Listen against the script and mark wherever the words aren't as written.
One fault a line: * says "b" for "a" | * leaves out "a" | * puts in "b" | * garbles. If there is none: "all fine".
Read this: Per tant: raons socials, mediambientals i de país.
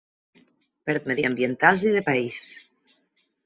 * leaves out "tant raons socials"